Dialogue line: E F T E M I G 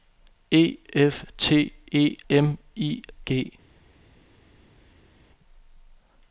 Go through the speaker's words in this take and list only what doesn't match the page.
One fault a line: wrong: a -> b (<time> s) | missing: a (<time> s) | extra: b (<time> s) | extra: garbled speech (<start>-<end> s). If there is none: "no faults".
no faults